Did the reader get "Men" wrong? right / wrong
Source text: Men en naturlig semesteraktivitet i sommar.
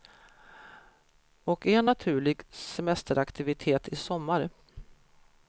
wrong